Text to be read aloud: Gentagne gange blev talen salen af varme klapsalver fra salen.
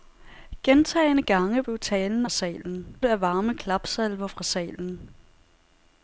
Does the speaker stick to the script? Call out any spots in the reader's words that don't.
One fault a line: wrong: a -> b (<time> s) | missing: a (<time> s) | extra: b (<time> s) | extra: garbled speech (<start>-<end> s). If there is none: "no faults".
no faults